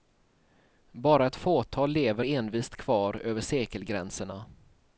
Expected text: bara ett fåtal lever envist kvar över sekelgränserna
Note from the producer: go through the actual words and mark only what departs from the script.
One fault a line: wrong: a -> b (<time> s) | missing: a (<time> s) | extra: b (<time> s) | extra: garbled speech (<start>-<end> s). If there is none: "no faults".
no faults